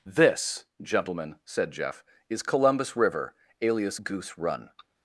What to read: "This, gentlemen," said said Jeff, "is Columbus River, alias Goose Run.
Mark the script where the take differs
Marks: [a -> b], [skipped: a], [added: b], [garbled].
"This, gentlemen," said [skipped: said] Jeff, "is Columbus River, alias Goose Run.